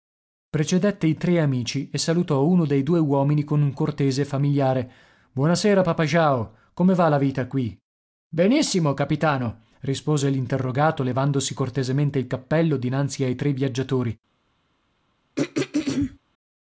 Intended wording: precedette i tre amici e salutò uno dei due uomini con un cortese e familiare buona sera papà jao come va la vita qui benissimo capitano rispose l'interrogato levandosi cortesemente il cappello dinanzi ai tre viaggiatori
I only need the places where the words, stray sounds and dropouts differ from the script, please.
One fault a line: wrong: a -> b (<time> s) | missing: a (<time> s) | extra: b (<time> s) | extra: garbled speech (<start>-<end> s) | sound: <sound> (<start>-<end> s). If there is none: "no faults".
sound: throat clearing (15.4-16.2 s)